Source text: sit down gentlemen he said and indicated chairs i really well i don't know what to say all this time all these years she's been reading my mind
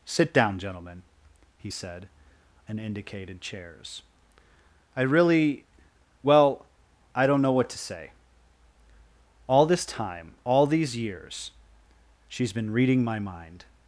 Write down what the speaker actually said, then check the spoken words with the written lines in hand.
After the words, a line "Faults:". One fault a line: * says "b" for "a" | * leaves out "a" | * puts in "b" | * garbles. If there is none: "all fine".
sit down gentlemen he said and indicated chairs i really well i don't know what to say all this time all these years she's been reading my mind
Faults:
all fine